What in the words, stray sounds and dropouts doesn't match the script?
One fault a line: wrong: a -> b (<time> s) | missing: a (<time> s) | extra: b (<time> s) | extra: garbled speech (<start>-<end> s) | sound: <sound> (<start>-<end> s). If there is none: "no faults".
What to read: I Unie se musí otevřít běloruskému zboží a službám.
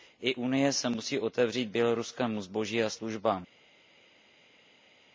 no faults